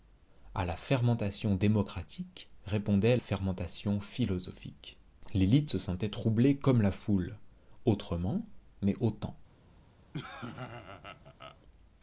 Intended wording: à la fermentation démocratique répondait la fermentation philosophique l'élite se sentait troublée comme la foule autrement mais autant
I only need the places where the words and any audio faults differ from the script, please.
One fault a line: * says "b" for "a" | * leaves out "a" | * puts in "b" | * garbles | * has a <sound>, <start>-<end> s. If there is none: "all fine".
* leaves out "la"
* has a laugh, 10.1-11.6 s